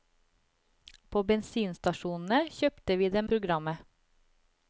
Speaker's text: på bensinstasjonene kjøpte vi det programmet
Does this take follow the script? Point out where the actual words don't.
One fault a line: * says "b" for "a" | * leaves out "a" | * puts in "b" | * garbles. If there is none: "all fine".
all fine